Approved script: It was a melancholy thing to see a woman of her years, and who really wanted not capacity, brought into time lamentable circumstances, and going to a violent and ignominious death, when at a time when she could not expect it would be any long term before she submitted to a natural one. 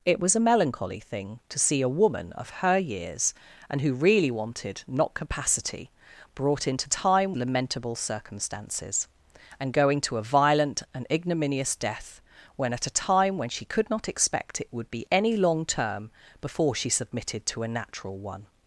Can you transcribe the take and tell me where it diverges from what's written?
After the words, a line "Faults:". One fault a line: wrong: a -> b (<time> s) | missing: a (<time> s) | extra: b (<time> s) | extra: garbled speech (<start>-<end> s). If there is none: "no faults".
It was a melancholy thing to see a woman of her years, and who really wanted not capacity, brought into time lamentable circumstances, and going to a violent and ignominious death, when at a time when she could not expect it would be any long term before she submitted to a natural one.
Faults:
no faults